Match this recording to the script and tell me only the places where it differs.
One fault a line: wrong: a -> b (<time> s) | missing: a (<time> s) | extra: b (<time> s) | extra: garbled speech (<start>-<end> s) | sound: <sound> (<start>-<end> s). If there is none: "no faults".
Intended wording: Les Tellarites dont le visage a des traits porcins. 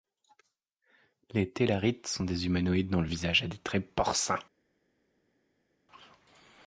extra: sont des humanoïdes (2.1 s)